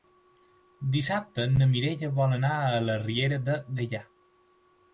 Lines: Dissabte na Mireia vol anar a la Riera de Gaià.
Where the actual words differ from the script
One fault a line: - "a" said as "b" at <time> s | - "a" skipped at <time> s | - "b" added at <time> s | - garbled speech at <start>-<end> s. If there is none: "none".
none